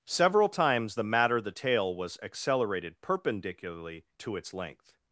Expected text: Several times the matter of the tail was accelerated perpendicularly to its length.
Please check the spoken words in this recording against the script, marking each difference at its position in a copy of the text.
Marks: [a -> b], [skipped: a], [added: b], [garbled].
Several times the matter [skipped: of] the tail was accelerated perpendicularly to its length.